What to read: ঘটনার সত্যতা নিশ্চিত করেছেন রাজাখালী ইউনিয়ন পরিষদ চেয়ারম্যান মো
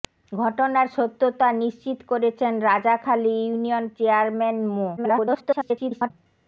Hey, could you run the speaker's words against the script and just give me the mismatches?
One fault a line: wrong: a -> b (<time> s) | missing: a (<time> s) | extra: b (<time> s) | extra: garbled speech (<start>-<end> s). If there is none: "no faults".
missing: পরিষদ (3.9 s)
extra: garbled speech (5.0-6.1 s)